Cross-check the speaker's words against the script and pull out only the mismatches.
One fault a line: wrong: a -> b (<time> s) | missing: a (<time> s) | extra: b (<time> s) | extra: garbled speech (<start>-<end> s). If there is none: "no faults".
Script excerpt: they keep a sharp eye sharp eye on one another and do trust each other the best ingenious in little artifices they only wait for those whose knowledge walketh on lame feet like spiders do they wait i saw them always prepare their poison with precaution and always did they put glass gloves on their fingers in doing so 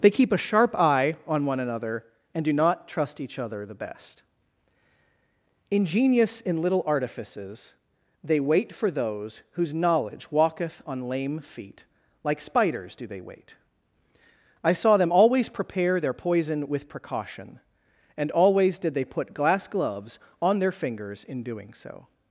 missing: sharp eye (1.1 s)
extra: not (2.5 s)
missing: only (8.4 s)